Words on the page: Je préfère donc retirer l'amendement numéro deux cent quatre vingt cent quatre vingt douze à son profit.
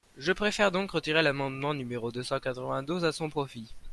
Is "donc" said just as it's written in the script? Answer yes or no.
yes